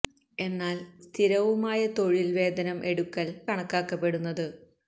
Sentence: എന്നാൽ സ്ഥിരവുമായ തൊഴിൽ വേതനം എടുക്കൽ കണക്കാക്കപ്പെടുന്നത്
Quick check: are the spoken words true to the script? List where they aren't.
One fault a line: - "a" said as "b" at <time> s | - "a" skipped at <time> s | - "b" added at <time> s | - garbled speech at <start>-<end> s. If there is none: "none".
none